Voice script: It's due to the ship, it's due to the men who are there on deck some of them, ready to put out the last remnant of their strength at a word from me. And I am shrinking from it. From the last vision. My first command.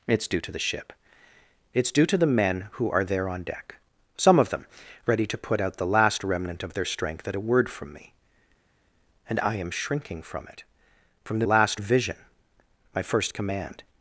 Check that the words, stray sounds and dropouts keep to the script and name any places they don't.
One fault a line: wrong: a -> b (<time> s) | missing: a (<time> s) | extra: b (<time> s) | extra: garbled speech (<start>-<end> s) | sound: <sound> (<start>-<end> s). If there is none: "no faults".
no faults